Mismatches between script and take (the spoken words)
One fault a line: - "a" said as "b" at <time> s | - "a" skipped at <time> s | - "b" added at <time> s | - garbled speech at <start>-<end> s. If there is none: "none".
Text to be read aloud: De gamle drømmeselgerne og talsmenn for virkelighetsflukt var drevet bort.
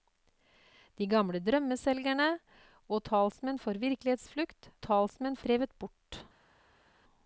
- "var" said as "talsmenn" at 4.9 s